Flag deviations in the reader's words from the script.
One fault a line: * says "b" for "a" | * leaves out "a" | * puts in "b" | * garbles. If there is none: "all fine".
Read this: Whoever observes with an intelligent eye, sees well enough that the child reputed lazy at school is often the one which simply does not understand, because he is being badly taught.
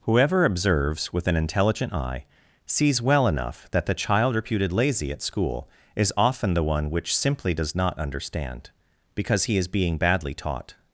all fine